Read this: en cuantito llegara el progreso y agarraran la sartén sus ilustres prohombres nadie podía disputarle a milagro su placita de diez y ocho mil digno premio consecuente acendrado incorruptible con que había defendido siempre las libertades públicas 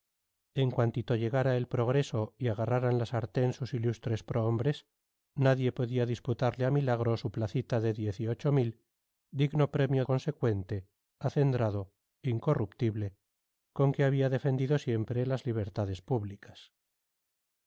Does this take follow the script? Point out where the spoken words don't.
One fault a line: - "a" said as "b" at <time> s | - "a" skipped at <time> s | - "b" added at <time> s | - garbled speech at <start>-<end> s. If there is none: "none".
none